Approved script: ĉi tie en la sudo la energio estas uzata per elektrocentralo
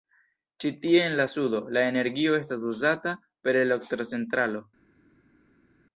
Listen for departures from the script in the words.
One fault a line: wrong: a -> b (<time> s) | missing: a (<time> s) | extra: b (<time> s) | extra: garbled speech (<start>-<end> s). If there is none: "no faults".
no faults